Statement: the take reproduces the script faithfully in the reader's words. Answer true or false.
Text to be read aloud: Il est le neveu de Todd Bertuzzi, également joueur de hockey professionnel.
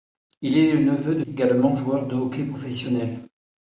false